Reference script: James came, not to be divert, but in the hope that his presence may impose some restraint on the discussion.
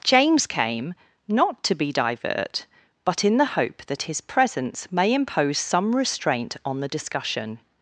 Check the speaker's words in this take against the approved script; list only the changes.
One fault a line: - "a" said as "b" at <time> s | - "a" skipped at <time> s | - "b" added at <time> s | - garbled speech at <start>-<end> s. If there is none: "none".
none